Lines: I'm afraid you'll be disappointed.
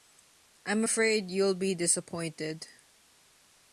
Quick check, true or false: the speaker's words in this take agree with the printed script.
true